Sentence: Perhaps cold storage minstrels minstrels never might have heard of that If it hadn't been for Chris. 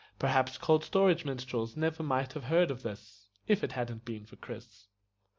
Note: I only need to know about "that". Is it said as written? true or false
false